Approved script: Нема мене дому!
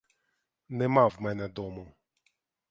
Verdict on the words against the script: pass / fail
fail